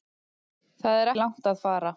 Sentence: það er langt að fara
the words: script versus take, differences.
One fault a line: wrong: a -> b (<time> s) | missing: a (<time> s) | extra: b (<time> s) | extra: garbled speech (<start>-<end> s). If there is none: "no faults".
no faults